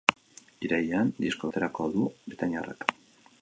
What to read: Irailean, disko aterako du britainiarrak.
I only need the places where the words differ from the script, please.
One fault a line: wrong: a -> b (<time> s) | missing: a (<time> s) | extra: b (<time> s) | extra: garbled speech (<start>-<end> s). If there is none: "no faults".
no faults